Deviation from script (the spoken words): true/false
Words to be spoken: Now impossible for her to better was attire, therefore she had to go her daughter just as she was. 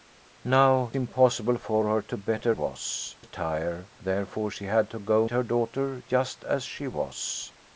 false